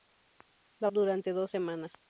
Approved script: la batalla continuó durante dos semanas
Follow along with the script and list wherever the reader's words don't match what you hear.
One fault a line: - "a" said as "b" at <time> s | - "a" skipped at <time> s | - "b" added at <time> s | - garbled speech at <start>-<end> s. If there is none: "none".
- "batalla continuó" skipped at 0.9 s